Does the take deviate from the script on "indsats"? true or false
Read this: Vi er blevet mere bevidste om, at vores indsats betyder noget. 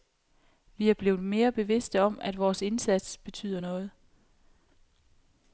false